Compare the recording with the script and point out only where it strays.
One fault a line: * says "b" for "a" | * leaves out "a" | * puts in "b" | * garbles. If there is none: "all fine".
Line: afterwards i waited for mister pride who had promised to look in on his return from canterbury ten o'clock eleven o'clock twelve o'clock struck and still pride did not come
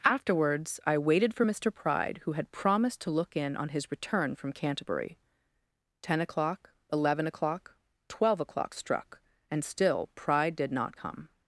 all fine